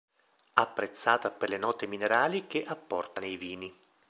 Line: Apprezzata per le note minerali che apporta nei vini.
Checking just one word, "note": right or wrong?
right